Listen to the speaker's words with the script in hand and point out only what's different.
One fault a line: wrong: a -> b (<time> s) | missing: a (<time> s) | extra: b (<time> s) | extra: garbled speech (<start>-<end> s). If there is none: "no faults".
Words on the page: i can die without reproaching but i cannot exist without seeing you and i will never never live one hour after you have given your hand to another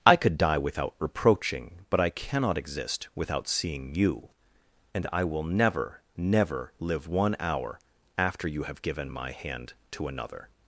wrong: can -> could (0.1 s)
wrong: your -> my (9.1 s)